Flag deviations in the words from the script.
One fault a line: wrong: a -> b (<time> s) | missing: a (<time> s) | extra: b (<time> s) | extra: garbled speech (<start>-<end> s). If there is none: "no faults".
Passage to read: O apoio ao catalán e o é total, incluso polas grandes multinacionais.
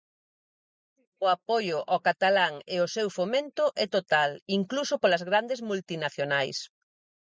extra: seu fomento (3.0 s)